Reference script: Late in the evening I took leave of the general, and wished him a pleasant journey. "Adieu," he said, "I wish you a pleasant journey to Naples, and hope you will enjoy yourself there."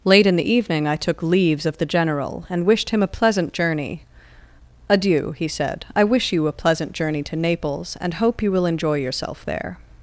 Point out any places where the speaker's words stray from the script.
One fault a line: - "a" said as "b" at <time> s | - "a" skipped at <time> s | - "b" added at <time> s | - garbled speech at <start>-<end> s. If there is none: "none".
- "leave" said as "leaves" at 1.2 s